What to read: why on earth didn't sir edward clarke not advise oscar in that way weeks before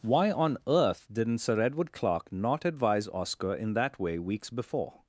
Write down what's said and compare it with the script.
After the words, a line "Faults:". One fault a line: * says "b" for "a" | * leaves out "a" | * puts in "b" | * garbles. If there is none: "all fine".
why on earth didn't sir edward clarke not advise oscar in that way weeks before
Faults:
all fine